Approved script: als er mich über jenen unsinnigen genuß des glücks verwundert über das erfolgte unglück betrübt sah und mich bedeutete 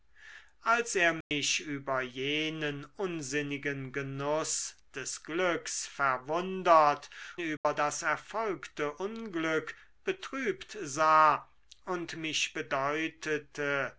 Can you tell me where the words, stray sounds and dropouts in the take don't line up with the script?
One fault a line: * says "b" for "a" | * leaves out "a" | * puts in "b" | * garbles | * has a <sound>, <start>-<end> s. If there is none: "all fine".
* has a dropout, 1.2-1.3 s
* has a dropout, 7.6-7.6 s